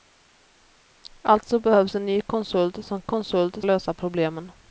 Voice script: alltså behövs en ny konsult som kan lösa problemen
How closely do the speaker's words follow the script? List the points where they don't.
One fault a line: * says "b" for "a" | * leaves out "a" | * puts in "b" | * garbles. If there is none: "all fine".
* says "konsult" for "kan"